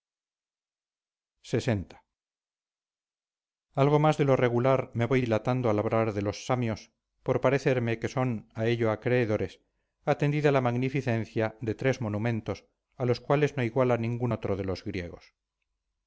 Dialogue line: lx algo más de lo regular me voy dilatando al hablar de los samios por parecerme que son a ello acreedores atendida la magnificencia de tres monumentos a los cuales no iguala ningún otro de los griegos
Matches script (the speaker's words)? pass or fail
pass